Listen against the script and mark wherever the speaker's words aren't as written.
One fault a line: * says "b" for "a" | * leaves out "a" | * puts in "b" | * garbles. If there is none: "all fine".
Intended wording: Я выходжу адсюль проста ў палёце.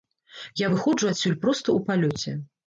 all fine